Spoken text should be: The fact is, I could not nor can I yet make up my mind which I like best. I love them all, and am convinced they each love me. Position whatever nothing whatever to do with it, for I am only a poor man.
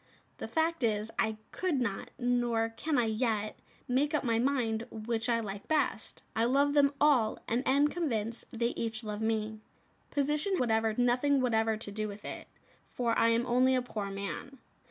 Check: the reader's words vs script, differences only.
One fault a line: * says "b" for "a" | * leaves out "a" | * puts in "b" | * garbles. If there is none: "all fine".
all fine